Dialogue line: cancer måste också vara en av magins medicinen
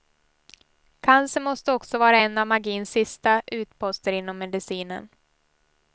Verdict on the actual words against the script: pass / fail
fail